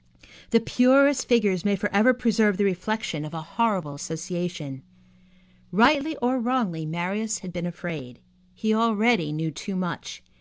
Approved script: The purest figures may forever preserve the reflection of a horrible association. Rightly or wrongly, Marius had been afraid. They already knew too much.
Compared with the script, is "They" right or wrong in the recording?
wrong